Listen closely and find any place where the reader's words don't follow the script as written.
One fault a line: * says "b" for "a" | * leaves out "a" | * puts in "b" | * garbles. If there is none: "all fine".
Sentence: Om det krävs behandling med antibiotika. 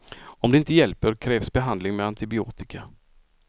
* puts in "inte hjälper"